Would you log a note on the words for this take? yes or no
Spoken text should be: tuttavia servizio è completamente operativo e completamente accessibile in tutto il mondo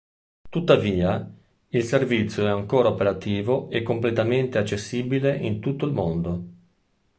yes